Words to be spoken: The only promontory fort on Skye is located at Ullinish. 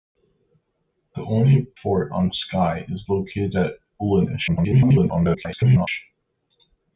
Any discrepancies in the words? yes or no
yes